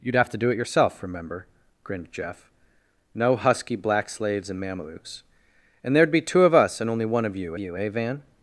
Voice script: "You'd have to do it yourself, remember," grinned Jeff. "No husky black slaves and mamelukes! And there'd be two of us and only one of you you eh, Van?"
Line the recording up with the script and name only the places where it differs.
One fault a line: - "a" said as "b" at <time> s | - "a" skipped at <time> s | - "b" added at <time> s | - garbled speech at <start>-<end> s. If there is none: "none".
none